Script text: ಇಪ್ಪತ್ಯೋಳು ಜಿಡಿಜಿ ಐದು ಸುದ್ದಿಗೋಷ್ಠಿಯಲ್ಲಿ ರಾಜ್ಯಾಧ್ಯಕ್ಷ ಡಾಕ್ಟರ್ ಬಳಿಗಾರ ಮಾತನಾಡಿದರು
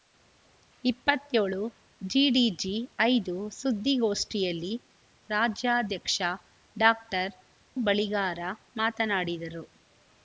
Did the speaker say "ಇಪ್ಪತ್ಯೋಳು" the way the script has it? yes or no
yes